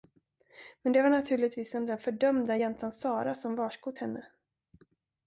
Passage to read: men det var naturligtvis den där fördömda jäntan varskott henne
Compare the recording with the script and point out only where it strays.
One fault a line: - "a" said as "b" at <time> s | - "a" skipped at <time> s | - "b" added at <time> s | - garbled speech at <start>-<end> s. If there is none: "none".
- "sara som" added at 2.9 s